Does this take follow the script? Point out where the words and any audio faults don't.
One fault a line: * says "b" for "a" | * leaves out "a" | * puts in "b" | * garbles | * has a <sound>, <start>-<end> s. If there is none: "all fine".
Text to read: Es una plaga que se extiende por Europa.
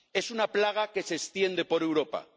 all fine